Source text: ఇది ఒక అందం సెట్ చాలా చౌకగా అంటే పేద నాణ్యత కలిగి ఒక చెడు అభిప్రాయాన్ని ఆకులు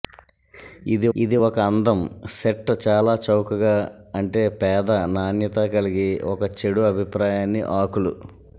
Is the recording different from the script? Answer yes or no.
yes